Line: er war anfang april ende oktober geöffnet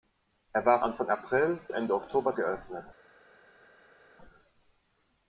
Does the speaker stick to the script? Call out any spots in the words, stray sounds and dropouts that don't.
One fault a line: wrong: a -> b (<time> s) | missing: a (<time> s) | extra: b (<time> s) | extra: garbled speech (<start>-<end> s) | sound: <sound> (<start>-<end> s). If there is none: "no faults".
no faults